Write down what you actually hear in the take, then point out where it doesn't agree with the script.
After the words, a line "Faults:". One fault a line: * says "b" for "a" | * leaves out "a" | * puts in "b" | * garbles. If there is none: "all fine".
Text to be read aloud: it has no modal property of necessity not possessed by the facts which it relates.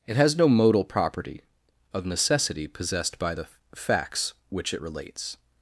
it has no modal property of necessity possessed by the facts which it relates.
Faults:
* leaves out "not"